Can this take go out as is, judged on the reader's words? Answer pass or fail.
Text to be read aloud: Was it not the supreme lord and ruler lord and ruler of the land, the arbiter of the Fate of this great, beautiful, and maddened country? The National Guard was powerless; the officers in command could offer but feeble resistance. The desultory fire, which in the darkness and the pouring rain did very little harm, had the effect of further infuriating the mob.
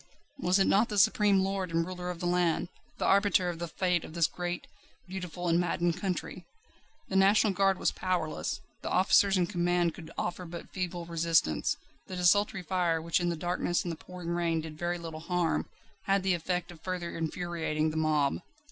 fail